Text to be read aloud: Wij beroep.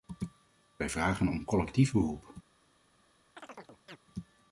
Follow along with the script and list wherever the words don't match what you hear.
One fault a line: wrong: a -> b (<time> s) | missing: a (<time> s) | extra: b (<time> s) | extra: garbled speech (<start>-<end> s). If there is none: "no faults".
extra: vragen om collectief (0.9 s)